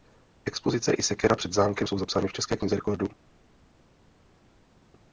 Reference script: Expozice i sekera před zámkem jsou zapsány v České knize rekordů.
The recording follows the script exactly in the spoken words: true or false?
true